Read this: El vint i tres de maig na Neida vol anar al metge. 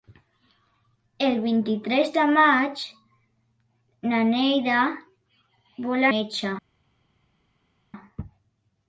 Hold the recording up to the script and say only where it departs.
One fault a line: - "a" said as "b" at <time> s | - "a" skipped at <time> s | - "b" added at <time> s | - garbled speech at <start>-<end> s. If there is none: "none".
- "anar al" skipped at 6.1 s